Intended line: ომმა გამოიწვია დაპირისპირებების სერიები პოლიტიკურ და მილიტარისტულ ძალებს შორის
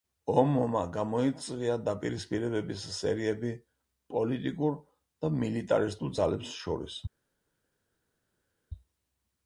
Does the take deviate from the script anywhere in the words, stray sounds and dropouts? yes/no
no